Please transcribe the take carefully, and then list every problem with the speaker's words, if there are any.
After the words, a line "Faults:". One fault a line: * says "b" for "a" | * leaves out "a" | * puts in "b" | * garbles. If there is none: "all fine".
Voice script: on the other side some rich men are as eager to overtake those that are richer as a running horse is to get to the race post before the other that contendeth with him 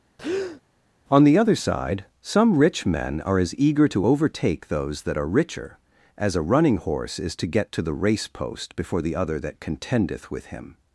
on the other side some rich men are as eager to overtake those that are richer as a running horse is to get to the race post before the other that contendeth with him
Faults:
all fine